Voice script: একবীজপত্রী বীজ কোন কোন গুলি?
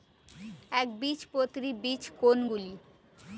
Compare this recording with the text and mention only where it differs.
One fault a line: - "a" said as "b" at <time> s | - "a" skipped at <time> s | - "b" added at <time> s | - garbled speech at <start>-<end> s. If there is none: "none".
- "কোন" skipped at 2.4 s